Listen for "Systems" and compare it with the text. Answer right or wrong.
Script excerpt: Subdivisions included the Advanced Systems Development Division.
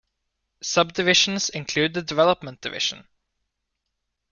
wrong